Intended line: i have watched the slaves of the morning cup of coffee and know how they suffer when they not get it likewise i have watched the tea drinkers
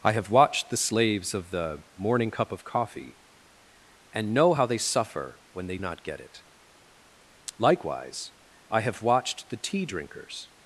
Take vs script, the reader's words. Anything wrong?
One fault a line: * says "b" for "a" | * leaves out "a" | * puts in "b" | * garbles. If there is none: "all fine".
all fine